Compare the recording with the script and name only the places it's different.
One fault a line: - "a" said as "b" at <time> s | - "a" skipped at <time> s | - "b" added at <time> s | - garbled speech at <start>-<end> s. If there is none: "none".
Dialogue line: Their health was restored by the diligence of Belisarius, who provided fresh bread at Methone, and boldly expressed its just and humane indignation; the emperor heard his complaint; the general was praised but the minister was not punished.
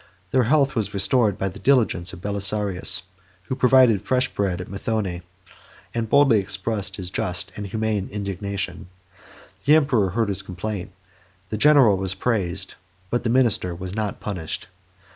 - "its" said as "his" at 7.0 s